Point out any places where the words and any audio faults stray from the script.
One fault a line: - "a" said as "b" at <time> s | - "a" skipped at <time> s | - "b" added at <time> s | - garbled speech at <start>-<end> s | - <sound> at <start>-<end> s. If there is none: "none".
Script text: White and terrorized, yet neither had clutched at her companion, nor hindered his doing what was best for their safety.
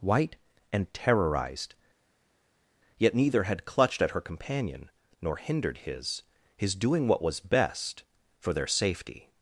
- "his" added at 6.6 s